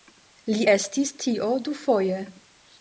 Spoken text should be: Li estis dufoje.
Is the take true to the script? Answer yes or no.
no